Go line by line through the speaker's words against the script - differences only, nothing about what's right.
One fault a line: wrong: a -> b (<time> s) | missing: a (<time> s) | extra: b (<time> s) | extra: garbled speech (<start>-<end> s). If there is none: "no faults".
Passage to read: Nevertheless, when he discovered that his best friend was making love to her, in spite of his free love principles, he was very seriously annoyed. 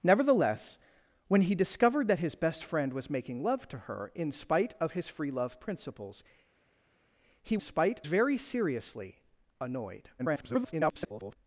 wrong: was -> spite (7.6 s)
extra: garbled speech (10.2-11.4 s)